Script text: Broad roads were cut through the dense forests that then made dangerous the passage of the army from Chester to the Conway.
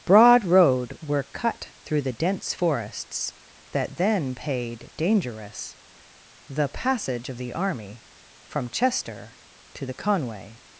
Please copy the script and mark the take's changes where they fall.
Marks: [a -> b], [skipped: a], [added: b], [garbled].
Broad [roads -> road] were cut through the dense forests that then [made -> paid] dangerous the passage of the army from Chester to the Conway.